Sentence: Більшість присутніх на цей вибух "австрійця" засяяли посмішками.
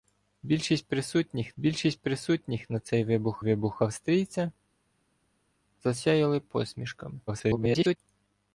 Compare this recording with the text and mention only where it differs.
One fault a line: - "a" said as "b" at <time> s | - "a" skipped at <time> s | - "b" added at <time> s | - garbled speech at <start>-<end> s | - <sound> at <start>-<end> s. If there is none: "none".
- "більшість присутніх" added at 1.6 s
- "вибух" added at 3.4 s
- garbled speech at 7.3-8.0 s